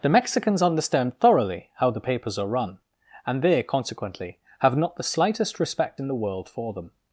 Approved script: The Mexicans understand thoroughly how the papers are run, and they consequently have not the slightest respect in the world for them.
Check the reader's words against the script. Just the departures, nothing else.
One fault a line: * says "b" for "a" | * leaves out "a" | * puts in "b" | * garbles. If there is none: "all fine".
all fine